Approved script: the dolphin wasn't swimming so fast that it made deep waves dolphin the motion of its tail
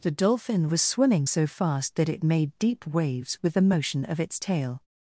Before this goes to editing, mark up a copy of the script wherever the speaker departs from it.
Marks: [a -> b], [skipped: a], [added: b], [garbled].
the dolphin [wasn't -> was] swimming so fast that it made deep waves [dolphin -> with] the motion of its tail